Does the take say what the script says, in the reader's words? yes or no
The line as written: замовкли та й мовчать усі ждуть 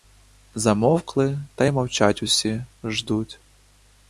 yes